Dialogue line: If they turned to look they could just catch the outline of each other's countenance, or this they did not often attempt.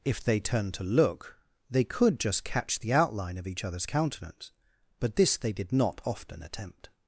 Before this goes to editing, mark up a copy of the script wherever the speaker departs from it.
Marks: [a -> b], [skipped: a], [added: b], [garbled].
If they turned to look they could just catch the outline of each other's countenance, [or -> but] this they did not often attempt.